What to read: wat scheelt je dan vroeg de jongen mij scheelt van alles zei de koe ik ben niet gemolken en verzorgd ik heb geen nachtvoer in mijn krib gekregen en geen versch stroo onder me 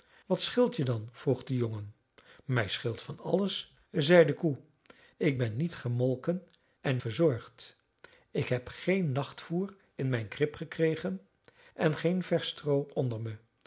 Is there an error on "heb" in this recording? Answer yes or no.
no